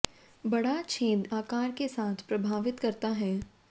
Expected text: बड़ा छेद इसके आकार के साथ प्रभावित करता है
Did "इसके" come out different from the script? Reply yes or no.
yes